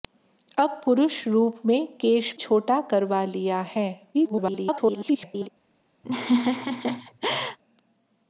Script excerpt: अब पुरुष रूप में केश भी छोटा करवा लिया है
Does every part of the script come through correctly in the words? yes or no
no